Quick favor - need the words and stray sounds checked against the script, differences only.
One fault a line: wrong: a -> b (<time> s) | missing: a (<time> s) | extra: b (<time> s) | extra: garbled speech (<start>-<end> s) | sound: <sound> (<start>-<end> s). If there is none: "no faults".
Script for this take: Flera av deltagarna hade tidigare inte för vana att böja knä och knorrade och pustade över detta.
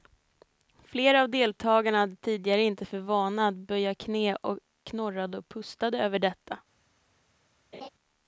sound: laugh (7.7-7.9 s)